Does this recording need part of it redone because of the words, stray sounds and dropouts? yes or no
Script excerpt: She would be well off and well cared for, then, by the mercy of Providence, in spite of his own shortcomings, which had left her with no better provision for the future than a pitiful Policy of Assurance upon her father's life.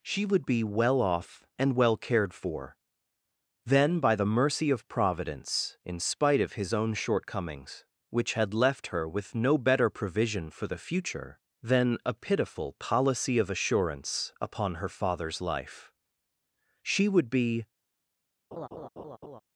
yes